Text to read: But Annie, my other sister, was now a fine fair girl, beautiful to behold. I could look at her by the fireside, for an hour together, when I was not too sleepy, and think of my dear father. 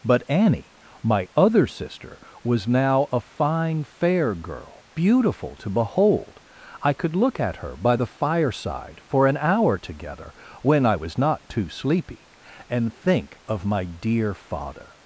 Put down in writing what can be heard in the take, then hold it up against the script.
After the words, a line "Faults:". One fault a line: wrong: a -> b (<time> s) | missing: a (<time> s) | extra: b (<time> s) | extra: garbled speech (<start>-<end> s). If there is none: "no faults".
But Annie, my other sister, was now a fine fair girl, beautiful to behold. I could look at her by the fireside, for an hour together, when I was not too sleepy, and think of my dear father.
Faults:
no faults